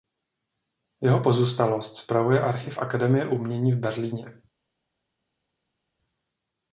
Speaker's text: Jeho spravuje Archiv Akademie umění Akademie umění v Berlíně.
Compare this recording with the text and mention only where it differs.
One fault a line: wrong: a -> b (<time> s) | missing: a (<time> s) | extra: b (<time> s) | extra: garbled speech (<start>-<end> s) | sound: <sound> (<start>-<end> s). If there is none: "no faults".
extra: pozůstalost (1.2 s)
missing: Akademie umění (3.7 s)